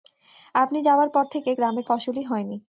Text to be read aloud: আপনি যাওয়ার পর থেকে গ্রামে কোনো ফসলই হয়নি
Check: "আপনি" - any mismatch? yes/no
no